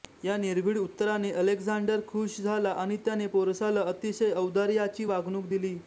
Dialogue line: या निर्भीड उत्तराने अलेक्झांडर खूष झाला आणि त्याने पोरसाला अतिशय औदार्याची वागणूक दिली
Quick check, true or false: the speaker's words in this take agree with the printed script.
true